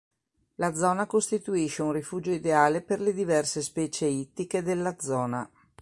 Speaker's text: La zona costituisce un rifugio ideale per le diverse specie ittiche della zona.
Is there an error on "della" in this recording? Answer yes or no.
no